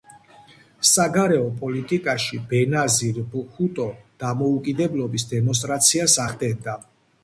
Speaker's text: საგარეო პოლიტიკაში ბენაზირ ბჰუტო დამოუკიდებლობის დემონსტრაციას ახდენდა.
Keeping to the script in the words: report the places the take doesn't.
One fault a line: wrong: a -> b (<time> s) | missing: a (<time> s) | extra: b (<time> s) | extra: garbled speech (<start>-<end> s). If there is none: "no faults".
no faults